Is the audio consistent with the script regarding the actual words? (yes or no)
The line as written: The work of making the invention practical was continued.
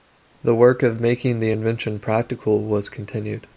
yes